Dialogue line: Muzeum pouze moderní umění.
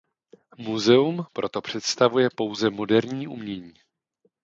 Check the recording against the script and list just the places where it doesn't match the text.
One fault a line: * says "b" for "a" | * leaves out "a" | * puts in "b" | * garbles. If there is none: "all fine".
* puts in "proto představuje"